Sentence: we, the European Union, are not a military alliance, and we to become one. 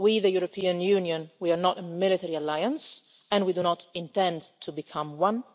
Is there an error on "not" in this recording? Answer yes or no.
no